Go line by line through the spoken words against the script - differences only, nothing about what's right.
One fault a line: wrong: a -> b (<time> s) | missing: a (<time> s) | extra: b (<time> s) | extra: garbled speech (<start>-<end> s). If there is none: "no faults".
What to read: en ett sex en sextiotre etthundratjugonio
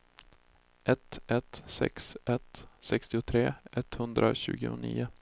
wrong: en -> ett (0.8 s)
wrong: en -> ett (2.3 s)